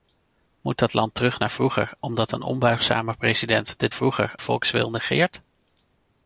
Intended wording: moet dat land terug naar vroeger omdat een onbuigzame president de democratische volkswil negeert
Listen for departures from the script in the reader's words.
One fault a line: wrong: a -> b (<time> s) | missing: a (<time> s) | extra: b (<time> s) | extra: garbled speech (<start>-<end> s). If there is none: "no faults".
wrong: democratische -> vroeger (3.9 s)